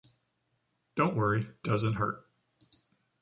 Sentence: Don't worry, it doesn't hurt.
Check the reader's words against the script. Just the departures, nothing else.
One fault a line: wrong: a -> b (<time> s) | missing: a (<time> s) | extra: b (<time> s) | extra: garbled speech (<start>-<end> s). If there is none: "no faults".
missing: it (1.5 s)